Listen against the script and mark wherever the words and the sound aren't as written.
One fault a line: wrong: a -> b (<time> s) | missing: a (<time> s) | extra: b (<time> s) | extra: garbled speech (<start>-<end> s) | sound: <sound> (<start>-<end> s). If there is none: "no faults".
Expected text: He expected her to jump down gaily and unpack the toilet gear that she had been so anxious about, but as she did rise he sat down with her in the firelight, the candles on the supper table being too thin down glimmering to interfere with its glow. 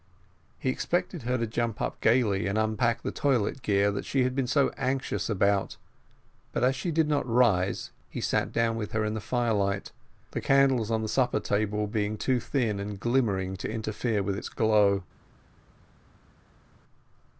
wrong: down -> up (1.8 s)
extra: not (7.1 s)
wrong: down -> and (12.8 s)